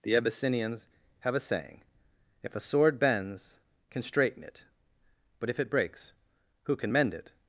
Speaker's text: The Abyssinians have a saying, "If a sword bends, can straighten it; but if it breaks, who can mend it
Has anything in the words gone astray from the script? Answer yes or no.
no